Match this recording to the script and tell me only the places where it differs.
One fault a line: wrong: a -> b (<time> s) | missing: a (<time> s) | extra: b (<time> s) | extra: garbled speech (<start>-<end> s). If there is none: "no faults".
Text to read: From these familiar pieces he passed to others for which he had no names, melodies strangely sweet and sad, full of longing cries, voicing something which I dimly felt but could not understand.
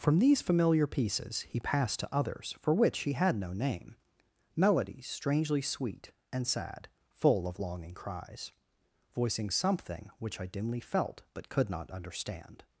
wrong: names -> name (3.5 s)